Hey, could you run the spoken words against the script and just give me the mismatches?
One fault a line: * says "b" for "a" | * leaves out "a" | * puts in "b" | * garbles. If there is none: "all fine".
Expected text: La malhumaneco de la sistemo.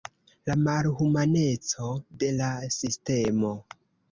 all fine